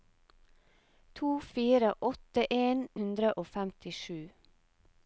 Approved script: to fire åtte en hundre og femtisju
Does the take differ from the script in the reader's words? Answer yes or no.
no